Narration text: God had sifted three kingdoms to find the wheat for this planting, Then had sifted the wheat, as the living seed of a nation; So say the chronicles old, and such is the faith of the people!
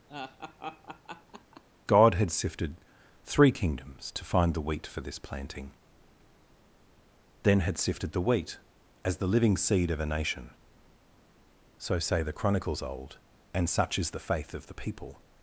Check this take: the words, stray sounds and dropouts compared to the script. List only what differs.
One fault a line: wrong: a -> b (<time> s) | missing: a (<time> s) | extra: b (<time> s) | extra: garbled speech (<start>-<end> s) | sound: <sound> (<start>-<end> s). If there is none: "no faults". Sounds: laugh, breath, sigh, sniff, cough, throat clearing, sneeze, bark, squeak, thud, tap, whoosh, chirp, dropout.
sound: laugh (0.1-1.6 s)